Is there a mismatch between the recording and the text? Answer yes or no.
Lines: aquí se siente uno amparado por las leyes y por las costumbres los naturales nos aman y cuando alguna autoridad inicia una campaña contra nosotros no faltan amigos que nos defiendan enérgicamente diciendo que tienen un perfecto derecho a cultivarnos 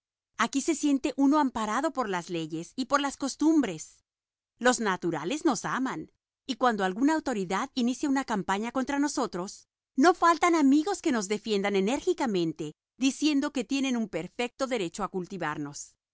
no